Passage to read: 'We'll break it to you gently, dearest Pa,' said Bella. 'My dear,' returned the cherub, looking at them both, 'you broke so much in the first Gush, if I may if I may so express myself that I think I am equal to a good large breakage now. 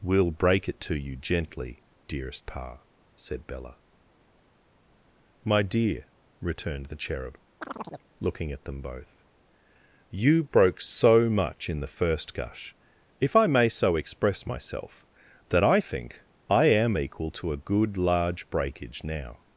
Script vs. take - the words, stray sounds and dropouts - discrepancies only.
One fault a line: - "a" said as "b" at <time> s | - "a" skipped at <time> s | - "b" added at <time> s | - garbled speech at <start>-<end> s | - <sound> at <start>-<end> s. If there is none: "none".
- chirp at 7.6-8.1 s
- "if I may" skipped at 13.7 s